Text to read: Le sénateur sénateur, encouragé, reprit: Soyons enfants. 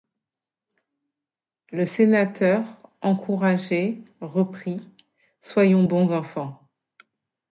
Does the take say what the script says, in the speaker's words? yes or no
no